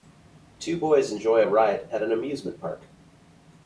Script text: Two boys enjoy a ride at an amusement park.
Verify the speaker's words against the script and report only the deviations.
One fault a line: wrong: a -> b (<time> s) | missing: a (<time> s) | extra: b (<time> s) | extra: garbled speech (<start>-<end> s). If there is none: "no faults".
no faults